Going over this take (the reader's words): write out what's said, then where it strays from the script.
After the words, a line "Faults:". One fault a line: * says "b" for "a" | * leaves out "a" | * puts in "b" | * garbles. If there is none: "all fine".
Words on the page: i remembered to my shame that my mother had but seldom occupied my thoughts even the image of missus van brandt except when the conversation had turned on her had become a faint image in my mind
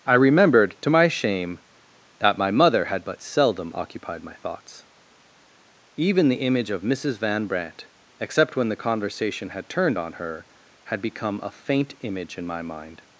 i remembered to my shame that my mother had but seldom occupied my thoughts even the image of missus van brandt except when the conversation had turned on her had become a faint image in my mind
Faults:
all fine